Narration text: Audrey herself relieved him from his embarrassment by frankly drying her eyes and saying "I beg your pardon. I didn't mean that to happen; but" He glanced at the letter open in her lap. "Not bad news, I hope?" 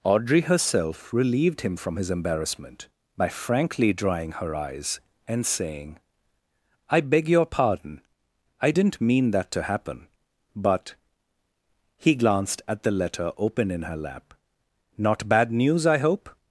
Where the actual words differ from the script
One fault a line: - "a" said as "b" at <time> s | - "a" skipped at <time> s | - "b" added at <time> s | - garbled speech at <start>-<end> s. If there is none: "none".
none